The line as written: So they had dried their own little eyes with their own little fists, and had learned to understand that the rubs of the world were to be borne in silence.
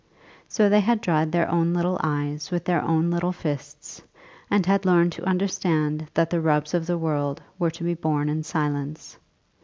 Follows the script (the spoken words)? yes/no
yes